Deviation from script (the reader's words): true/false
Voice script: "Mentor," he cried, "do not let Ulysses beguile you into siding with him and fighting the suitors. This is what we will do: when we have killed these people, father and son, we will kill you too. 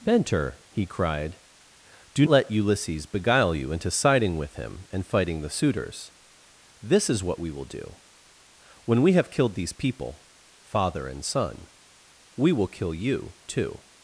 true